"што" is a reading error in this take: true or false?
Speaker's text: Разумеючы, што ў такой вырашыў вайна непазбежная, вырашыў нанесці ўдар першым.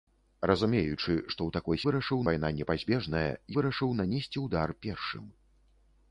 false